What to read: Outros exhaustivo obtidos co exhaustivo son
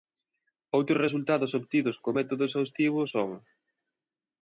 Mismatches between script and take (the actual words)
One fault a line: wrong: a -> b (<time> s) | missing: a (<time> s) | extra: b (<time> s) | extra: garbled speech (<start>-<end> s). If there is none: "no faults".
wrong: exhaustivo -> resultados (1.1 s)
extra: método (2.2 s)